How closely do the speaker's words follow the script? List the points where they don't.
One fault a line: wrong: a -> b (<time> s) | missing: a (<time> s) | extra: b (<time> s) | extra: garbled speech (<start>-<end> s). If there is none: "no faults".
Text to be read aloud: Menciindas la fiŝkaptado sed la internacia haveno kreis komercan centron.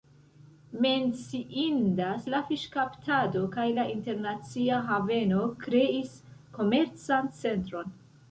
wrong: sed -> kaj (3.6 s)